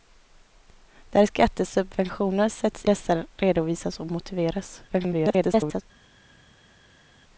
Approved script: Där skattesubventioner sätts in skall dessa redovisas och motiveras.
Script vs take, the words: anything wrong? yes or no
yes